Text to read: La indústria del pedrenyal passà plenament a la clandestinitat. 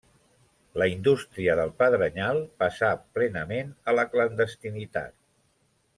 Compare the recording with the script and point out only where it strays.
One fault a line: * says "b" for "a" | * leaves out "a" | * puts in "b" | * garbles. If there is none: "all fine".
all fine